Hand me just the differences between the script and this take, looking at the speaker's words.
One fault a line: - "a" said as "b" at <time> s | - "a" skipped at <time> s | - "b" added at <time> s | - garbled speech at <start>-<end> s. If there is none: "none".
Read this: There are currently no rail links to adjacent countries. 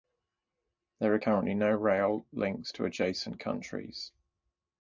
none